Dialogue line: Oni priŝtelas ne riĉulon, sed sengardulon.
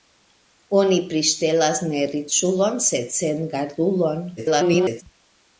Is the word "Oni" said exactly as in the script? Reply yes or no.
yes